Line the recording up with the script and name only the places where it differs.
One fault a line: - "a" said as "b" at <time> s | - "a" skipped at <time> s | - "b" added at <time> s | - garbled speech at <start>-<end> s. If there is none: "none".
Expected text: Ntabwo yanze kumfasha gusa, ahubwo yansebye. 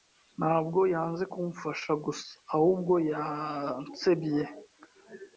none